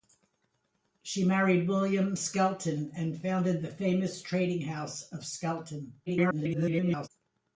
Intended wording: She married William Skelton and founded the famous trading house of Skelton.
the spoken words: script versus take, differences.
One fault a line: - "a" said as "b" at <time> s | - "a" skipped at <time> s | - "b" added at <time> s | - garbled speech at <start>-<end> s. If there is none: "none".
- garbled speech at 6.1-7.1 s